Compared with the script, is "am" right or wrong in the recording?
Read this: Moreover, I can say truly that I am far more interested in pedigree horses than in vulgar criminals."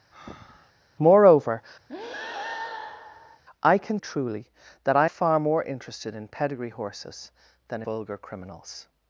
wrong